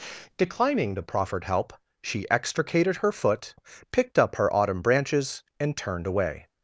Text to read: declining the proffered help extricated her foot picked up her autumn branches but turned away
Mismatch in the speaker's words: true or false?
true